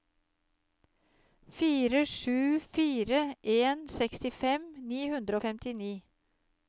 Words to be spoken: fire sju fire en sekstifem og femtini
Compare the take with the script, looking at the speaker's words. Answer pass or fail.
fail